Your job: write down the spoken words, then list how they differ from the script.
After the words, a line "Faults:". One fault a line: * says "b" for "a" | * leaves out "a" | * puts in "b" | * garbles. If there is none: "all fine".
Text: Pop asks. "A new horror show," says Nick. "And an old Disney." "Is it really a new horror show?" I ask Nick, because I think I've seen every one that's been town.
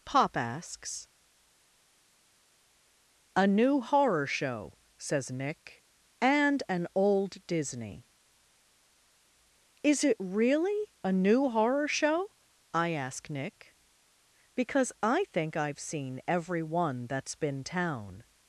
Pop asks. "A new horror show," says Nick. "And an old Disney." "Is it really a new horror show?" I ask Nick, because I think I've seen every one that's been town.
Faults:
all fine